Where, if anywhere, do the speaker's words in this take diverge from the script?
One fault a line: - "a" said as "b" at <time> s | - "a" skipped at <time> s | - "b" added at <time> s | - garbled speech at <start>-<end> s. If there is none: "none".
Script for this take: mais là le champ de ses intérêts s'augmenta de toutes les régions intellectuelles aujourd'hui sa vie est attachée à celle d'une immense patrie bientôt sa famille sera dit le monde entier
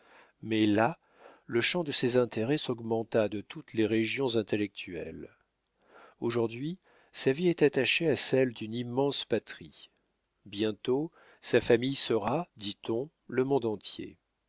- "on" added at 12.9 s